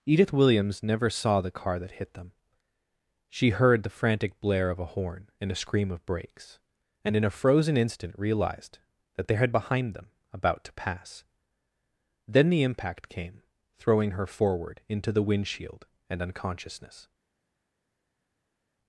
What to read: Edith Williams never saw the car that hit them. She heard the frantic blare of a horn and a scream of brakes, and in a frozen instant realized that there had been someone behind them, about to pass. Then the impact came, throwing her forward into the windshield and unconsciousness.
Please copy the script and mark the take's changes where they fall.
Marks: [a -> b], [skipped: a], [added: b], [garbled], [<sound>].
Edith Williams never saw the car that hit them. She heard the frantic blare of a horn and a scream of brakes, and in a frozen instant realized that there had [skipped: been someone] behind them, about to pass. Then the impact came, throwing her forward into the windshield and unconsciousness.